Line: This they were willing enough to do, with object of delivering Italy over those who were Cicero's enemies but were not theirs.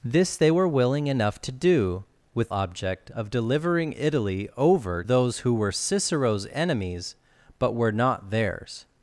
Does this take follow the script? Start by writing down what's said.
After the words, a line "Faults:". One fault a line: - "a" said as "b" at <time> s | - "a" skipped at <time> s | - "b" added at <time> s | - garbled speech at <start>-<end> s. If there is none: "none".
This they were willing enough to do, with object of delivering Italy over those who were Cicero's enemies but were not theirs.
Faults:
none